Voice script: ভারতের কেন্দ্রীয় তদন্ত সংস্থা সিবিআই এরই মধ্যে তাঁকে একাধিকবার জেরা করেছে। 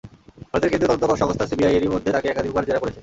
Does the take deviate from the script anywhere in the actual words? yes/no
no